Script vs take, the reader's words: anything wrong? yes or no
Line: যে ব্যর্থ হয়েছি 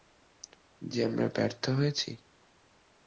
yes